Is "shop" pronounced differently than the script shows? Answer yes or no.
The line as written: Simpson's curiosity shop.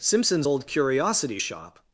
no